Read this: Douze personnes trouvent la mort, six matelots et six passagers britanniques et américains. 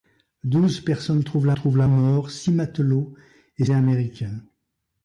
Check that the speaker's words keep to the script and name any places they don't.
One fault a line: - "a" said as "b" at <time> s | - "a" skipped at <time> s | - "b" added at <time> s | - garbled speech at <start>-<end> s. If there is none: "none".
- "trouvent la" added at 1.5 s
- "six passagers britanniques" skipped at 3.7 s